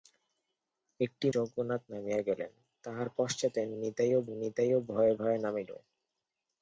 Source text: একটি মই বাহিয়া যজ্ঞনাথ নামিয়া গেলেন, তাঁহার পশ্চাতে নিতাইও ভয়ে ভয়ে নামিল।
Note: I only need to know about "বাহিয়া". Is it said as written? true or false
false